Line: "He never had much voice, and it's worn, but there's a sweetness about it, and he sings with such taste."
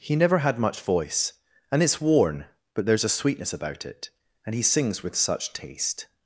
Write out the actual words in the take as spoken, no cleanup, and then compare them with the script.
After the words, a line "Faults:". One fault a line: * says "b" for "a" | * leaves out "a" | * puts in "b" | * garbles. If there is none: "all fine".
"He never had much voice, and it's worn, but there's a sweetness about it, and he sings with such taste."
Faults:
all fine